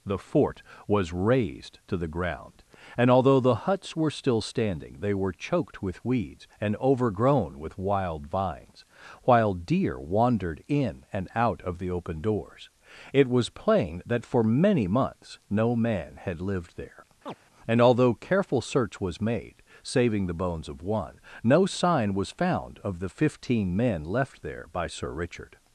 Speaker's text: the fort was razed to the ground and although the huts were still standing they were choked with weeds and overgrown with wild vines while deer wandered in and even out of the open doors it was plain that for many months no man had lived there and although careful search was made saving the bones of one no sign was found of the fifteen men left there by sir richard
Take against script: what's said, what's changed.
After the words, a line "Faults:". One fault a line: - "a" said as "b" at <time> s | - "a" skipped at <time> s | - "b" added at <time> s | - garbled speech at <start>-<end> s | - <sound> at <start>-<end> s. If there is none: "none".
the fort was razed to the ground and although the huts were still standing they were choked with weeds and overgrown with wild vines while deer wandered in and out of the open doors it was plain that for many months no man had lived there and although careful search was made saving the bones of one no sign was found of the fifteen men left there by sir richard
Faults:
- "even" skipped at 11.3 s
- chirp at 17.3-17.4 s